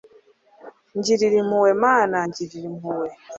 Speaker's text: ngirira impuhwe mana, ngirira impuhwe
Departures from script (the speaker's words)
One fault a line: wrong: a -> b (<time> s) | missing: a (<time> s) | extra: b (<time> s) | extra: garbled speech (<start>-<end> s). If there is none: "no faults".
no faults